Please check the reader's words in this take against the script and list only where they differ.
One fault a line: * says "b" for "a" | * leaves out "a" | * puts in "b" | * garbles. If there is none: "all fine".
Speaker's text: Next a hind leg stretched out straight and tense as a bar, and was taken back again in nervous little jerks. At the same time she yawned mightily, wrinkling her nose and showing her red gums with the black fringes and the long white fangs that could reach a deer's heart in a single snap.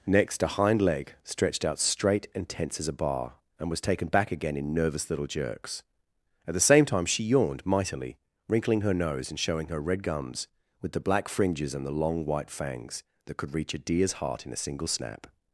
all fine